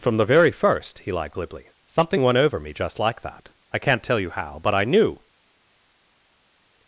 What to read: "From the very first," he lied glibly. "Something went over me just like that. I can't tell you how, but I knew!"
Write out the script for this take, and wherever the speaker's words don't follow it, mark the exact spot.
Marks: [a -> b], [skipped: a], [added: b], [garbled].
"From the very first," he lied glibly. "Something went over me just like that. I can't tell you how, but I knew!"